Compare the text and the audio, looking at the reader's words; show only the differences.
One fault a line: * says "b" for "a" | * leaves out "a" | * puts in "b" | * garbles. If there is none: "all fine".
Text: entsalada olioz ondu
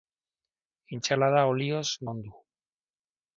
all fine